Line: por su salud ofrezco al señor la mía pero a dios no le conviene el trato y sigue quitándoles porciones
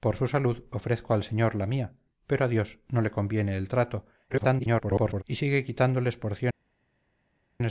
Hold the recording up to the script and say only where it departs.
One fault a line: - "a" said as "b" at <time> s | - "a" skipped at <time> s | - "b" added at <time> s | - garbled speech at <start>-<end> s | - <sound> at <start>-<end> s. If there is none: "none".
- garbled speech at 4.3-5.2 s